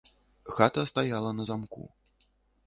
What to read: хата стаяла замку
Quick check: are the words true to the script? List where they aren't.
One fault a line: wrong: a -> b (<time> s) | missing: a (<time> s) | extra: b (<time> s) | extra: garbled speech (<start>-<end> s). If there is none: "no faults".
extra: на (1.3 s)